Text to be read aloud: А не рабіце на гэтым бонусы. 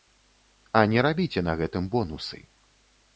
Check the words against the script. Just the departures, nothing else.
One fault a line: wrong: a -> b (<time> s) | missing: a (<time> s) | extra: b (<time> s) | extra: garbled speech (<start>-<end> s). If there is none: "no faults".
no faults